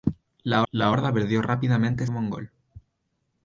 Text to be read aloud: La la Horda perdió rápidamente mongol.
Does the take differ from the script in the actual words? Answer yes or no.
no